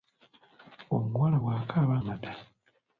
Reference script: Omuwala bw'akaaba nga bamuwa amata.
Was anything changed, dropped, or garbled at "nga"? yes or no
yes